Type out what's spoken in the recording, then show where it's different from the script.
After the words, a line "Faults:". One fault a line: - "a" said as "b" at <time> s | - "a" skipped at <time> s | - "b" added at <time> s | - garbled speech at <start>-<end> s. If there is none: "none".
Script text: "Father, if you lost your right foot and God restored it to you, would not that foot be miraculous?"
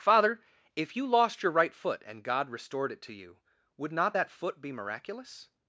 "Father, if you lost your right foot and God restored it to you, would not that foot be miraculous?"
Faults:
none